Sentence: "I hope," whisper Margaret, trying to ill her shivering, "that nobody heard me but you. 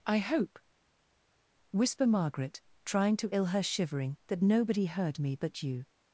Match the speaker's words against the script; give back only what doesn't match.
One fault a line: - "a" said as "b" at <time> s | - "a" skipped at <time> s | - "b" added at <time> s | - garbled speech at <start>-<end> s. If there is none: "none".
none